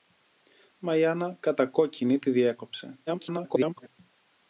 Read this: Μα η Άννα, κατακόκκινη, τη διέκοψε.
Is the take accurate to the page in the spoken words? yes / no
no